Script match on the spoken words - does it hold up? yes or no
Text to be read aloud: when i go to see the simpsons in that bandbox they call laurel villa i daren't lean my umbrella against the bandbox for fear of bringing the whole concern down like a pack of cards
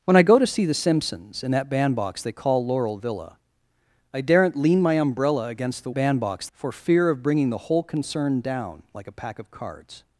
yes